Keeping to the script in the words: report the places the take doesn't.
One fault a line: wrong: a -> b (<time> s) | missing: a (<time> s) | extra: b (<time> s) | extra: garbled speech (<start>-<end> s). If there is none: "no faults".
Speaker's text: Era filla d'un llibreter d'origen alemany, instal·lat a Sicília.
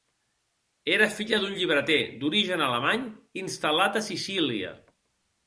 no faults